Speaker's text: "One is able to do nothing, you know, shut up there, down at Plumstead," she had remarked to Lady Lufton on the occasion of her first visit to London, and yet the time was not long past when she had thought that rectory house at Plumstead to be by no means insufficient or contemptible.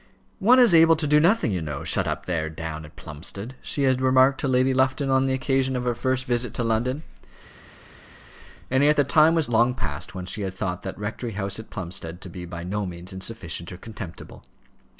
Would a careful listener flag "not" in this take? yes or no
yes